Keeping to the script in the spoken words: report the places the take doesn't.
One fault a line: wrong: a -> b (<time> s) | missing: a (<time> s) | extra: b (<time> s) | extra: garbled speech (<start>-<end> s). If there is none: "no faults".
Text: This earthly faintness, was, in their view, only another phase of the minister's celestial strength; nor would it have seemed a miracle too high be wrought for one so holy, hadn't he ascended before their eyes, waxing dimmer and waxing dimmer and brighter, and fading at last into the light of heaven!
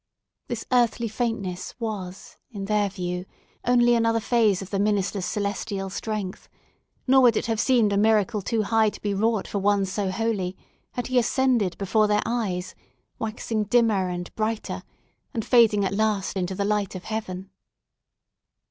extra: to (8.9 s)
wrong: hadn't -> had (10.9 s)
missing: waxing dimmer and (14.3 s)